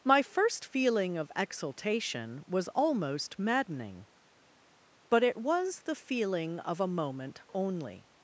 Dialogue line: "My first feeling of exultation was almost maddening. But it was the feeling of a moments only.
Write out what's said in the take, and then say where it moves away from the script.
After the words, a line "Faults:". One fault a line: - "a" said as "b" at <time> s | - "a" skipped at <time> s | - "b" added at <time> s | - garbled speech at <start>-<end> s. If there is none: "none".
"My first feeling of exultation was almost maddening. But it was the feeling of a moment only.
Faults:
- "moments" said as "moment" at 6.9 s